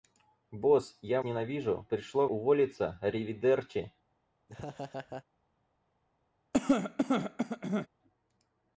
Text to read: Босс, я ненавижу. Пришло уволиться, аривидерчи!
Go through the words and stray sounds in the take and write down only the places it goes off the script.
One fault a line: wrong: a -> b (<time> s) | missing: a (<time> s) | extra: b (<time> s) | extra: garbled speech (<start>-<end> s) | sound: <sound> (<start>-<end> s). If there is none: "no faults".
sound: laugh (4.5-5.2 s)
sound: cough (6.5-7.9 s)